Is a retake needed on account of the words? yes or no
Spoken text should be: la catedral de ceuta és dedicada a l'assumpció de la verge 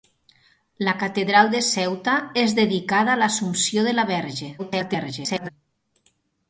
yes